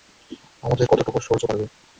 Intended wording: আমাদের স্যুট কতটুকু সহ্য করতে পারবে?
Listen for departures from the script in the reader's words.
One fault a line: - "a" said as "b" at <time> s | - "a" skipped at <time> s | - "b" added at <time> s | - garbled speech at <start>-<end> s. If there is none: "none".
- "স্যুট" skipped at 0.9 s
- "করতে" skipped at 1.4 s